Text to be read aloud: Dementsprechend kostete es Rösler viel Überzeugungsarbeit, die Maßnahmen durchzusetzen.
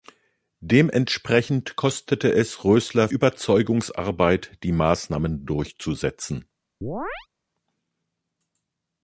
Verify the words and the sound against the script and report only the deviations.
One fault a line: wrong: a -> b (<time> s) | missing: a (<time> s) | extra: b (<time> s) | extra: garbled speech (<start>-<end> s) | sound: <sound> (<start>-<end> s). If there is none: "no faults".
missing: viel (3.1 s)
sound: chirp (6.8-7.3 s)